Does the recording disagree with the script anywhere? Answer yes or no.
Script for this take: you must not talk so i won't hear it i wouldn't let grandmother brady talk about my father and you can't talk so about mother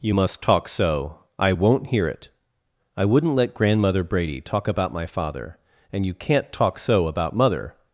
yes